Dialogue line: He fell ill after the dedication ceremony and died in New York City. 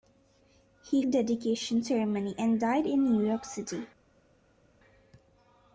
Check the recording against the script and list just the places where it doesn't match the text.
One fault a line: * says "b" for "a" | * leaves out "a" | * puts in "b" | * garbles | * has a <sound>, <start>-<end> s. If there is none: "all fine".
* leaves out "fell ill after"